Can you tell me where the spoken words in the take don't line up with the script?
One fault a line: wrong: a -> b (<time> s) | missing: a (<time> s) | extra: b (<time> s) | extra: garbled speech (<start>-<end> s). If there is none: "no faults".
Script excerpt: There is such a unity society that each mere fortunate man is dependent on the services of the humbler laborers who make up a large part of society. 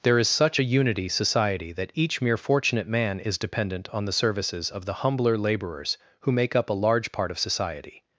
no faults